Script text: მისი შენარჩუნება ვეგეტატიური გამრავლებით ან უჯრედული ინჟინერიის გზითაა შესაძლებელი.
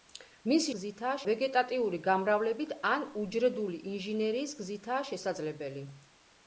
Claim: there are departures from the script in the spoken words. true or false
true